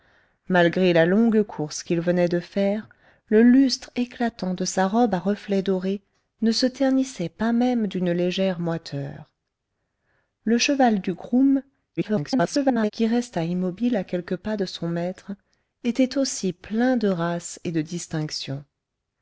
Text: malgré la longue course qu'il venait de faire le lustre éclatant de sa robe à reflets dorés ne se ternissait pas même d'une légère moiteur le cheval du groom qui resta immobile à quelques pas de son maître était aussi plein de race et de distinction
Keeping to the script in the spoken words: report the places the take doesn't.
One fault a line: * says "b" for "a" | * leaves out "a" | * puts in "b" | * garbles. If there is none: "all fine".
* garbles